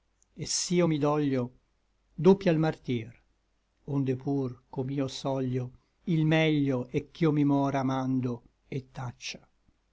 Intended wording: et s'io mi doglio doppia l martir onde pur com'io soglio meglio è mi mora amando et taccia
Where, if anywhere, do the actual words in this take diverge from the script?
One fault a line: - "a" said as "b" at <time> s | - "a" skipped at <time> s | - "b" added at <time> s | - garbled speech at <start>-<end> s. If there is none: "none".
- "il" added at 6.0 s
- "ch'io" added at 7.1 s